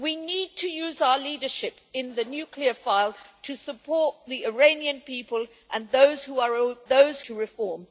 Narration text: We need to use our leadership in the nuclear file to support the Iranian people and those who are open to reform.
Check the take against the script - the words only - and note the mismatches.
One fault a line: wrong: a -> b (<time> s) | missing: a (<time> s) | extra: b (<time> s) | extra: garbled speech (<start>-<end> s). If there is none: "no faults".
wrong: open -> those (6.9 s)